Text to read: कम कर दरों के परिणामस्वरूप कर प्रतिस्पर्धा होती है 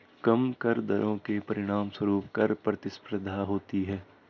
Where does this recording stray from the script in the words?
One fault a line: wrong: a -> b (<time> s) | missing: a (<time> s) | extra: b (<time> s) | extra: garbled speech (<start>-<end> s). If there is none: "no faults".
no faults